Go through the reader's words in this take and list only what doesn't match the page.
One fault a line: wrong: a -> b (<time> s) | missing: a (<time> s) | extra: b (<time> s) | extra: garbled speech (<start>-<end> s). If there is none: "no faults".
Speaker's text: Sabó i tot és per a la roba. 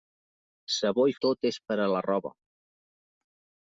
no faults